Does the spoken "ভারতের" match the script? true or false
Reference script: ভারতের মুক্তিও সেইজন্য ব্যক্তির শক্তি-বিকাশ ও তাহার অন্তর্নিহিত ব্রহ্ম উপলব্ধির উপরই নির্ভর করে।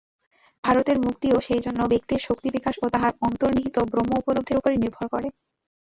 true